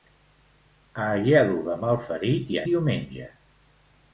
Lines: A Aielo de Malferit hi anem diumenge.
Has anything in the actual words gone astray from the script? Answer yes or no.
yes